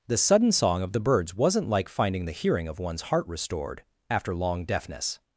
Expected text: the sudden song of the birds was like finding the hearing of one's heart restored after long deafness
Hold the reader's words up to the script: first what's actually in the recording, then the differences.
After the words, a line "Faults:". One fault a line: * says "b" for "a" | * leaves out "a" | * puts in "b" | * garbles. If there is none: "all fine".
the sudden song of the birds wasn't like finding the hearing of one's heart restored after long deafness
Faults:
* says "wasn't" for "was"